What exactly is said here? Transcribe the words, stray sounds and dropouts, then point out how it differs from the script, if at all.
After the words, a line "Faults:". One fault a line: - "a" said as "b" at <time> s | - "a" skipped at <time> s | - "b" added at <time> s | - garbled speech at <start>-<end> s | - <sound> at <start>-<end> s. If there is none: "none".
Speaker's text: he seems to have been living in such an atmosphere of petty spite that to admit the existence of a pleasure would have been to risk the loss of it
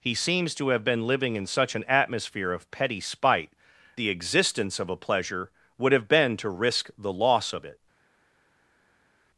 he seems to have been living in such an atmosphere of petty spite the existence of a pleasure would have been to risk the loss of it
Faults:
- "that to admit" skipped at 3.5 s